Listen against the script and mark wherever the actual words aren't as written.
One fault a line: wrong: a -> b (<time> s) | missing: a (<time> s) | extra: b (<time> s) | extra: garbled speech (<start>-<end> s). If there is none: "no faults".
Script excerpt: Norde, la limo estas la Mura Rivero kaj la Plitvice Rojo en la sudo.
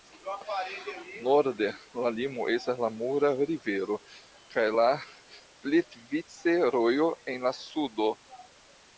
no faults